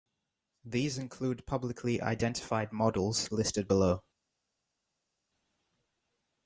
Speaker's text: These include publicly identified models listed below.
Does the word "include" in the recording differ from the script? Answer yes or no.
no